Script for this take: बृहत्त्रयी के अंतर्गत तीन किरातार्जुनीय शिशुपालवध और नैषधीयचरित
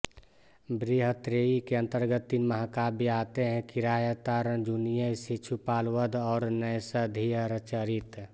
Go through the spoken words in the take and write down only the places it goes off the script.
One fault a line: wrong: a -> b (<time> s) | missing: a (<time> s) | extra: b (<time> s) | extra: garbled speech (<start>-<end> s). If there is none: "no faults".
extra: महाकाव्य आते हैं (2.5 s)